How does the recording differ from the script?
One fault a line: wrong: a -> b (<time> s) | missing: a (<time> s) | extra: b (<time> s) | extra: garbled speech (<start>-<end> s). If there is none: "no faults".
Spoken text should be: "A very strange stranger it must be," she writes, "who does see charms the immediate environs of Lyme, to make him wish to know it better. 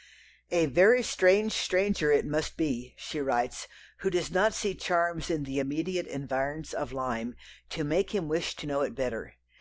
extra: not (4.3 s)
extra: in (5.3 s)